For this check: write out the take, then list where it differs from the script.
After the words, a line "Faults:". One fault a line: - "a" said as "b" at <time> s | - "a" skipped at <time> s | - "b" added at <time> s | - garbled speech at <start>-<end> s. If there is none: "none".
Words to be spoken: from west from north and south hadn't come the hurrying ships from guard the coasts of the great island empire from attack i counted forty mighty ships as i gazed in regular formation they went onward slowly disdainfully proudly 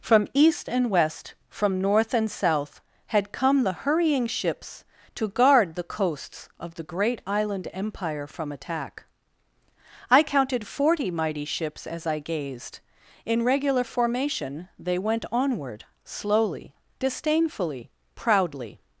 from east and west from north and south had come the hurrying ships to guard the coasts of the great island empire from attack i counted forty mighty ships as i gazed in regular formation they went onward slowly disdainfully proudly
Faults:
- "east and" added at 0.3 s
- "hadn't" said as "had" at 3.1 s
- "from" said as "to" at 5.1 s